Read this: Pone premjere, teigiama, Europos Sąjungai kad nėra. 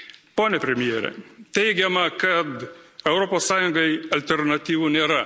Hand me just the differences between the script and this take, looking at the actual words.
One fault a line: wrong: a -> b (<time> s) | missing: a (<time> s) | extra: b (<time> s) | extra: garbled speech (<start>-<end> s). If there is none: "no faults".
extra: kad (2.2 s)
wrong: kad -> alternatyvų (4.2 s)